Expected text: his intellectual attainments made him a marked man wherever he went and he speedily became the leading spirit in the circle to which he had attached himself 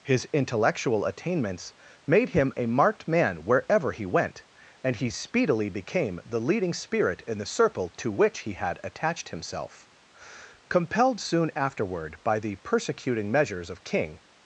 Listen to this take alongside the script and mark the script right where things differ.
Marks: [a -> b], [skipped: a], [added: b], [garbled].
his intellectual attainments made him a marked man wherever he went and he speedily became the leading spirit in the circle to which he had attached himself [added: compelled soon afterward by the persecuting measures of king]